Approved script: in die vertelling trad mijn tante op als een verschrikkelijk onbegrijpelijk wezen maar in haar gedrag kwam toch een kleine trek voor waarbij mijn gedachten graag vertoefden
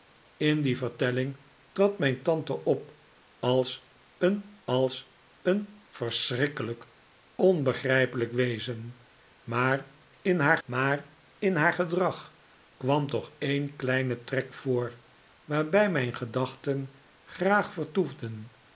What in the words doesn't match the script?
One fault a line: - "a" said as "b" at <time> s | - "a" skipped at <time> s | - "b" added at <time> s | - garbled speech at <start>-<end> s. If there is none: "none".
- "als een" added at 4.6 s
- "maar in haar" added at 10.6 s